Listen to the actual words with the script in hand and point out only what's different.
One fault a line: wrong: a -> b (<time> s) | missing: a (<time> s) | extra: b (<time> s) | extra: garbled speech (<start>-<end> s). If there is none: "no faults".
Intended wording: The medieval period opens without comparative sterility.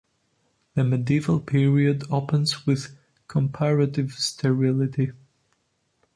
wrong: without -> with (2.7 s)